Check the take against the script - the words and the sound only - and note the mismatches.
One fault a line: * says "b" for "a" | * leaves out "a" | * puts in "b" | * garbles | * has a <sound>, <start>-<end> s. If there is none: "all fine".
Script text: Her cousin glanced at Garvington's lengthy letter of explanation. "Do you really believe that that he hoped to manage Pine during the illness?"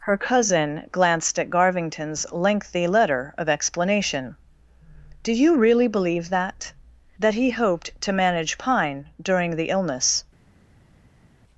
all fine